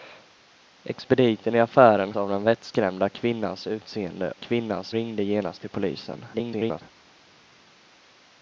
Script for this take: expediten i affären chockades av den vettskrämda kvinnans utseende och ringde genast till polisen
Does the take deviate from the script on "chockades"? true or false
true